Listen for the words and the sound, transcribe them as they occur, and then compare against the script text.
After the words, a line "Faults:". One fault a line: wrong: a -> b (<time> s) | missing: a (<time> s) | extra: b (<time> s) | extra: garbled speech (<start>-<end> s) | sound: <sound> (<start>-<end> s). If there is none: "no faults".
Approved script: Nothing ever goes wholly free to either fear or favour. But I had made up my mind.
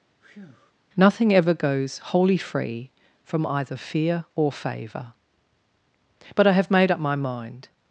Nothing ever goes wholly free from either fear or favour. But I have made up my mind.
Faults:
sound: breath (0.2-0.7 s)
wrong: to -> from (3.2 s)
wrong: had -> have (6.5 s)